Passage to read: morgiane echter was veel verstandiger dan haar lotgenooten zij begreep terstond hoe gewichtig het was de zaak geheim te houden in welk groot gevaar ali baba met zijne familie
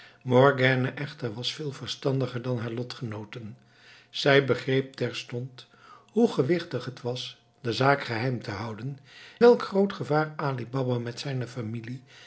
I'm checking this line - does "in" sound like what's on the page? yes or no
no